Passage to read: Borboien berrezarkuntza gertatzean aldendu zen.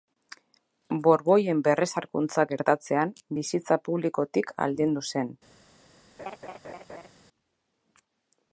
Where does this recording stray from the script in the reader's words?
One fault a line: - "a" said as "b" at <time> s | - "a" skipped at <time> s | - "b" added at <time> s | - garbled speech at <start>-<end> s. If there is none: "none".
- "bizitza publikotik" added at 3.4 s